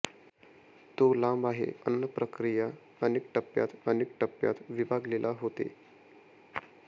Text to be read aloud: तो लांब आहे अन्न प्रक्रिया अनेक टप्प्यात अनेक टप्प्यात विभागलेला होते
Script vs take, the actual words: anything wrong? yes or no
no